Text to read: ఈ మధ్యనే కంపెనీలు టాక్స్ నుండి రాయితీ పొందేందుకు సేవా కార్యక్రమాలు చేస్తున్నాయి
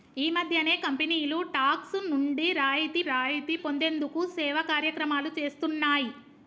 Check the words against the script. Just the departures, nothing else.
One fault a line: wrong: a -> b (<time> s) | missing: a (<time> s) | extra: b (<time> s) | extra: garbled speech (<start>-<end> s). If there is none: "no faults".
extra: రాయితీ (3.0 s)